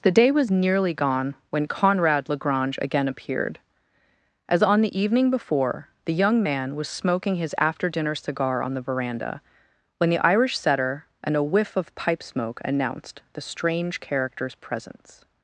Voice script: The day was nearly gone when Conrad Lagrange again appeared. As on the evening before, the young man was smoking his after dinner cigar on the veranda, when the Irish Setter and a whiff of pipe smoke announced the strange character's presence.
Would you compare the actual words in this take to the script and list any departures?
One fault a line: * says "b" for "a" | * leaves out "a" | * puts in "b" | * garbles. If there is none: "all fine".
all fine